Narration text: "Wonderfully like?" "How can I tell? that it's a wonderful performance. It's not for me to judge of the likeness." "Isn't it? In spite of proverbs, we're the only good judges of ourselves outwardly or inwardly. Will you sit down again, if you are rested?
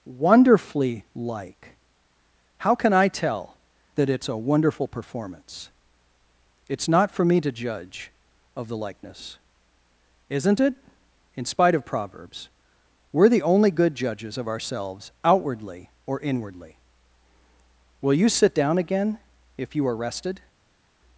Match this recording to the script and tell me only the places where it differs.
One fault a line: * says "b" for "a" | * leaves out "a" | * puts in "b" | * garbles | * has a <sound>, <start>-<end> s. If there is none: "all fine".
all fine